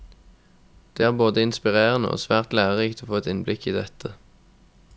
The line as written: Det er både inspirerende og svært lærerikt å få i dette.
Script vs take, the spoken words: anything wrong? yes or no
yes